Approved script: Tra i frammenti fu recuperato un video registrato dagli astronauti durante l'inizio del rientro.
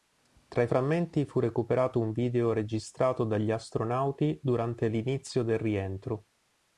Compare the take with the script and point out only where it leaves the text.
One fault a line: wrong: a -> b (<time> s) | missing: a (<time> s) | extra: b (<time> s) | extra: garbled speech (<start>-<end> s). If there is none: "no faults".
no faults